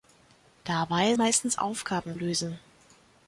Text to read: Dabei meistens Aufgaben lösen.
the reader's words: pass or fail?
pass